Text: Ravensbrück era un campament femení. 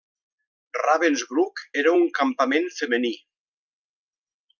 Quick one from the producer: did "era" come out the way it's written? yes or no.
yes